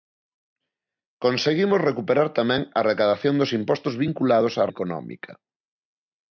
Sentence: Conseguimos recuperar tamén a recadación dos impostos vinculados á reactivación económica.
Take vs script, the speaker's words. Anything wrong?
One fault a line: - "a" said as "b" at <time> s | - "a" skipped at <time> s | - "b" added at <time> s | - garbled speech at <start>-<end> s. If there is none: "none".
- "reactivación" skipped at 4.6 s